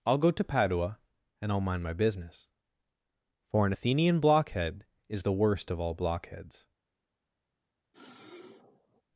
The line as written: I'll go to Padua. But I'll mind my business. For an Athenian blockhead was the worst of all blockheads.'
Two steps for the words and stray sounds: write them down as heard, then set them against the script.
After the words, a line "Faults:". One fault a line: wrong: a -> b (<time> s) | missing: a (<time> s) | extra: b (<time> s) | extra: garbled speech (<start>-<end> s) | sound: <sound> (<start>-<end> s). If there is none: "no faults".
I'll go to Padua. And I'll mind my business. For an Athenian blockhead is the worst of all blockheads.'
Faults:
wrong: But -> And (1.4 s)
wrong: was -> is (5.1 s)
sound: sniff (7.9-9.0 s)